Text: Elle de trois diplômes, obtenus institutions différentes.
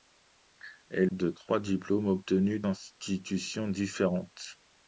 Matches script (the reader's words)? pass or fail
pass